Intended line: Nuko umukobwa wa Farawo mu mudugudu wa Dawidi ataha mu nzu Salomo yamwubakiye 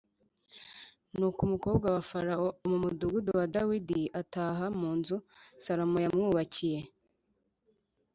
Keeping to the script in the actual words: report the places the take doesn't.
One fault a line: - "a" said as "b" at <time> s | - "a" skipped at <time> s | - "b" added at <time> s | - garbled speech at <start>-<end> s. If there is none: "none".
none